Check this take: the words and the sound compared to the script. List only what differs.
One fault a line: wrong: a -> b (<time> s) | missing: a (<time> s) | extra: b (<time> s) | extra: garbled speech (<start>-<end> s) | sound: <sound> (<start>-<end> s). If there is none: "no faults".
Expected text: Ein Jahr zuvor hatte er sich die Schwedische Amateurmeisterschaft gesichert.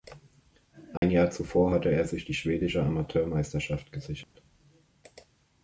sound: dropout (1.0-1.0 s)
sound: dropout (4.2-4.4 s)